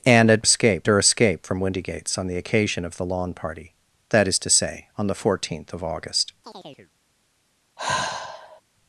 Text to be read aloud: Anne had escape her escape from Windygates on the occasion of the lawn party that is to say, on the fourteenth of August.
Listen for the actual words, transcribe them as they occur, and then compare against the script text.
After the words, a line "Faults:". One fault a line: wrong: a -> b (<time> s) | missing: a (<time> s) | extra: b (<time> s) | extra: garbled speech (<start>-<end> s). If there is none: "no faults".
Anne had escape her escape from Windygates on the occasion of the lawn party that is to say, on the fourteenth of August.
Faults:
no faults